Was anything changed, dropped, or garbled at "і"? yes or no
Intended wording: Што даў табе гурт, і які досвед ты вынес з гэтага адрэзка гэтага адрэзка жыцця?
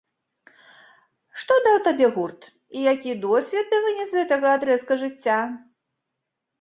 no